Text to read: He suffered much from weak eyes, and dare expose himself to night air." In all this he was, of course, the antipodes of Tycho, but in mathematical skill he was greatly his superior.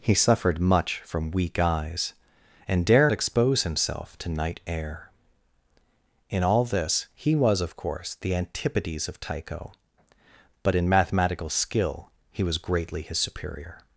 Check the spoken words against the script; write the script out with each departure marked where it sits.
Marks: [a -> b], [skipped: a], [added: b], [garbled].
He suffered much from weak eyes, and dare expose himself to night air." In all this he was, of course, the antipodes of Tycho, but in mathematical skill he was greatly his superior.